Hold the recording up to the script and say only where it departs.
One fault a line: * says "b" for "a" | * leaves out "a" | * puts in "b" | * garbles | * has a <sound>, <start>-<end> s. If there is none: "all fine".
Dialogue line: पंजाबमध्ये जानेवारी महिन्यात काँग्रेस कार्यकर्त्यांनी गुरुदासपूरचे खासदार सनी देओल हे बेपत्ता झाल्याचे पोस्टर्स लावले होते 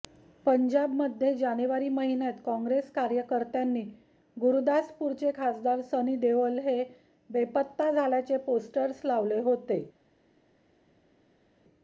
all fine